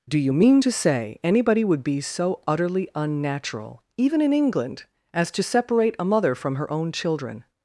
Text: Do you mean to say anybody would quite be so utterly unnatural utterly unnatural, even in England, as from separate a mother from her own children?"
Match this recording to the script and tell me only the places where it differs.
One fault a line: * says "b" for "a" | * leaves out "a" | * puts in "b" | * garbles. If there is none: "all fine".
* leaves out "quite"
* leaves out "utterly unnatural"
* says "to" for "from"